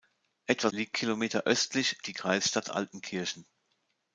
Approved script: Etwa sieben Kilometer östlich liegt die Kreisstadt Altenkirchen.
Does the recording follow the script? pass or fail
fail